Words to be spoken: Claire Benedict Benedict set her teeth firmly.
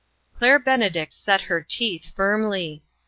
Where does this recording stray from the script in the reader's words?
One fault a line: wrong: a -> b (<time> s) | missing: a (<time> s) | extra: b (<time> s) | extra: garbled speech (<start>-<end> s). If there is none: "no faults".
missing: Benedict (1.1 s)